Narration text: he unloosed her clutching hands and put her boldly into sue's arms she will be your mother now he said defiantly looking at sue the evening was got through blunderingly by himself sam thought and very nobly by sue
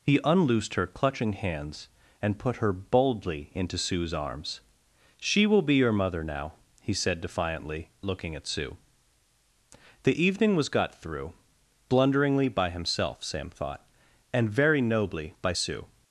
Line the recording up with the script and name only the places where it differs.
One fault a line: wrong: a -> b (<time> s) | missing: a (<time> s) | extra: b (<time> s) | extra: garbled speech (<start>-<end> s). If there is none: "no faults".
no faults